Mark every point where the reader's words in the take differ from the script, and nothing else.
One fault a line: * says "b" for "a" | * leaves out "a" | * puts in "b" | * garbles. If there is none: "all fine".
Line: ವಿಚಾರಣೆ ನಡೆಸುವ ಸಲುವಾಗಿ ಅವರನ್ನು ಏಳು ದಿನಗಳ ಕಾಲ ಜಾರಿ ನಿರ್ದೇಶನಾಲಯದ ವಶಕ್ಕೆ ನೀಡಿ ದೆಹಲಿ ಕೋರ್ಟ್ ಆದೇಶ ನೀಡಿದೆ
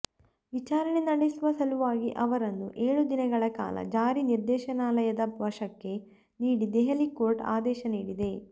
all fine